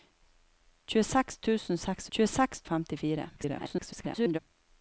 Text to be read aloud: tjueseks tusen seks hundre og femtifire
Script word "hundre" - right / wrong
wrong